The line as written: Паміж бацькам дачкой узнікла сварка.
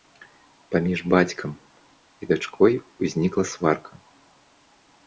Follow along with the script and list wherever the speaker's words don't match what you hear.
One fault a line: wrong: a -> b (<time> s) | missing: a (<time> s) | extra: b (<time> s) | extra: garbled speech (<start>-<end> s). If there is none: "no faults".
extra: і (2.2 s)